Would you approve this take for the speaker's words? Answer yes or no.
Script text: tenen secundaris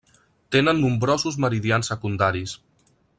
no